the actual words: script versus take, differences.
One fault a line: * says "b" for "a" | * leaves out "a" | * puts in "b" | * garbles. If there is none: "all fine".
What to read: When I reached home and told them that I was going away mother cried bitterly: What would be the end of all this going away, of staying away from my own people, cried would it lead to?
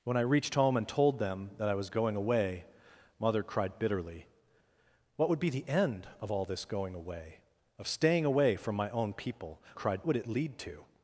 all fine